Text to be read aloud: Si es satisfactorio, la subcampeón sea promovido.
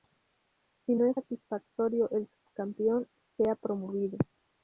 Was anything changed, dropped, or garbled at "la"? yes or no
yes